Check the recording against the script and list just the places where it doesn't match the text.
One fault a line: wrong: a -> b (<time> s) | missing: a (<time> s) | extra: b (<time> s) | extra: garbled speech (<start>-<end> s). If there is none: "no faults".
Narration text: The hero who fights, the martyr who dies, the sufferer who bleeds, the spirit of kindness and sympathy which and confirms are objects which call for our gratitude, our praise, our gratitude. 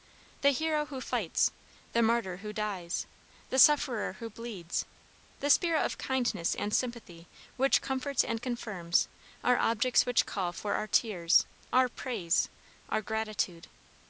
extra: comforts (7.8 s)
wrong: gratitude -> tears (10.9 s)